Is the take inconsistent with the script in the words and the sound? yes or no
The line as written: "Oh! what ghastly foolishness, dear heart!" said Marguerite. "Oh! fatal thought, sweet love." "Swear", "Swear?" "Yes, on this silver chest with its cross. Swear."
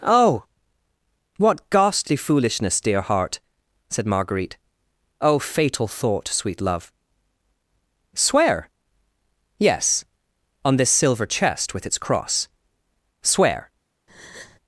yes